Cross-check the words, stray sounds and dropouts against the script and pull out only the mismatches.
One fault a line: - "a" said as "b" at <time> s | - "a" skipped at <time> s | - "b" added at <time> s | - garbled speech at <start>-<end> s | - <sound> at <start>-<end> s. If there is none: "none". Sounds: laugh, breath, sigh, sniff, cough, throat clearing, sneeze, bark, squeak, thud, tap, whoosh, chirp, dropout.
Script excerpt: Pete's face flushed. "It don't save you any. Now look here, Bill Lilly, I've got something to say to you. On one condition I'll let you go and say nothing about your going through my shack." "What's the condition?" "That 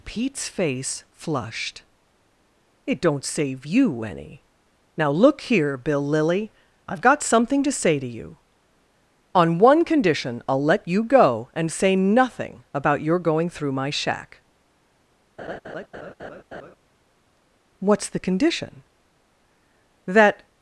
- laugh at 15.4-16.8 s